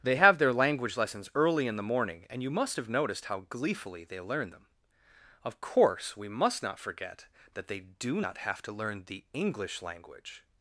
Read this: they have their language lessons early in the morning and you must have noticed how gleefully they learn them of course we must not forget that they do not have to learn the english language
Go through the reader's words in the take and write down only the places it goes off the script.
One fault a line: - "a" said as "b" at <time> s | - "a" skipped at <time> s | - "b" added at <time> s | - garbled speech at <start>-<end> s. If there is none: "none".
none